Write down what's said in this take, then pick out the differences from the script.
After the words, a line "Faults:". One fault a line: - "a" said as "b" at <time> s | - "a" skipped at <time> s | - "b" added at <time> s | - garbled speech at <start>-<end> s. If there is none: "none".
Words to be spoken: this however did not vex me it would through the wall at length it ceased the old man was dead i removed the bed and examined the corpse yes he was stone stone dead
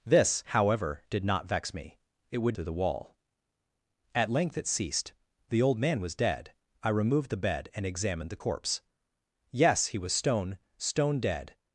this however did not vex me it would through the wall at length it ceased the old man was dead i removed the bed and examined the corpse yes he was stone stone dead
Faults:
none